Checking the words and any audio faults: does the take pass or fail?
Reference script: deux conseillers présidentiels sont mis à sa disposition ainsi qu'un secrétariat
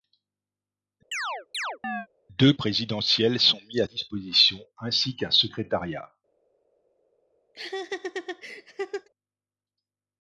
fail